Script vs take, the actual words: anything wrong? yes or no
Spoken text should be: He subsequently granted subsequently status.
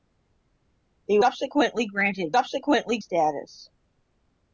no